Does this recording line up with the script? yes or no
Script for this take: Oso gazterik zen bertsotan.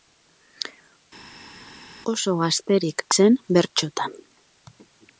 yes